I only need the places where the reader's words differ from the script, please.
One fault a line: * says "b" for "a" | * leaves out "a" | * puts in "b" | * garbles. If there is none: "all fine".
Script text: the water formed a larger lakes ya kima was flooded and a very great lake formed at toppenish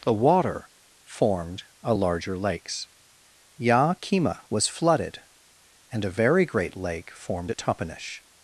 all fine